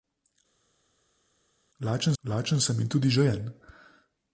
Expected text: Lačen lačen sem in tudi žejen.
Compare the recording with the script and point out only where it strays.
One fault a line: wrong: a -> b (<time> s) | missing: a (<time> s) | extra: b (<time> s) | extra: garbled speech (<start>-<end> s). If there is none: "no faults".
no faults